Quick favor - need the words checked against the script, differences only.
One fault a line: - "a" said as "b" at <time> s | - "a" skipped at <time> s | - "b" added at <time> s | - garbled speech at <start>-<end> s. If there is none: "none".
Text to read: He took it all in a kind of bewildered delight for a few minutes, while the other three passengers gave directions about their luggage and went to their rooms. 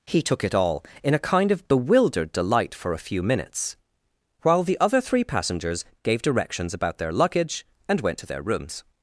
none